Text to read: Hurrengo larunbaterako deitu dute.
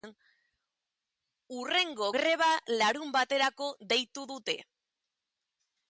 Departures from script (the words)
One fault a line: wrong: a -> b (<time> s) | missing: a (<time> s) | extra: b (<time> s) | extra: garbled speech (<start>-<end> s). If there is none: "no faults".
extra: greba (2.2 s)